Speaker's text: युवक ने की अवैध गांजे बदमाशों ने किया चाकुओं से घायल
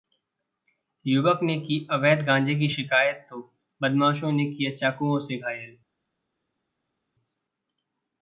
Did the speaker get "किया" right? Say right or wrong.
right